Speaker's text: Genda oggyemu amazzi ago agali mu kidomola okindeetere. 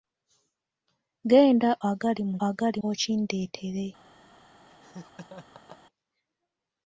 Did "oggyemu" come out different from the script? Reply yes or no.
yes